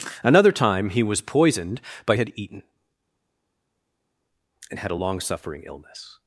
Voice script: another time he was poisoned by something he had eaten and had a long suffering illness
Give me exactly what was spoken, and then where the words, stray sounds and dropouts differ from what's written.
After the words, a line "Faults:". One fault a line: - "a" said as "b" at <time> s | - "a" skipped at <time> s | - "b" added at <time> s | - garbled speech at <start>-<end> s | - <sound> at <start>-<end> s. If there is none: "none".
another time he was poisoned by had eaten and had a long suffering illness
Faults:
- "something he" skipped at 2.1 s